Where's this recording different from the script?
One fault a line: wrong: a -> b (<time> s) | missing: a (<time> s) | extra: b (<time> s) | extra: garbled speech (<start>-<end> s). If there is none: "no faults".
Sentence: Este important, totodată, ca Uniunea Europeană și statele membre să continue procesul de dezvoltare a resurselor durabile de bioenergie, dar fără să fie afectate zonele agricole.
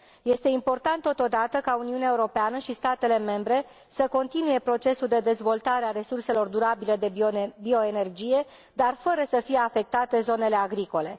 no faults